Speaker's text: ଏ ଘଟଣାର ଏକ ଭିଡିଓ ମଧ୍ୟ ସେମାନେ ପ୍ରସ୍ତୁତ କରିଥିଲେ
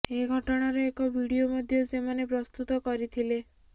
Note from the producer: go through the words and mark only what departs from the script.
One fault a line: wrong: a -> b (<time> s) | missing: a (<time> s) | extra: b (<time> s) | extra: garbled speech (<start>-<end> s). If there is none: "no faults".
no faults